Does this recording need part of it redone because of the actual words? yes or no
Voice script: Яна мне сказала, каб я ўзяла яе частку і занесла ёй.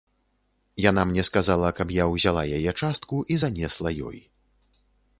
no